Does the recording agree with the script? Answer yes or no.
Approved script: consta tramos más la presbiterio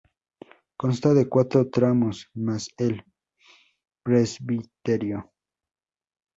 no